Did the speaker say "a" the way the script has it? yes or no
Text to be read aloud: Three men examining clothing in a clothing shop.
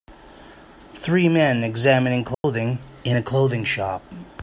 yes